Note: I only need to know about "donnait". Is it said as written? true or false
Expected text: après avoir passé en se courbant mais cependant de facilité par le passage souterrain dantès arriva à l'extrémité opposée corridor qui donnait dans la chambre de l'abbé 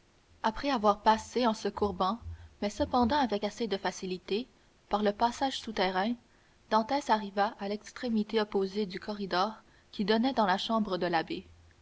true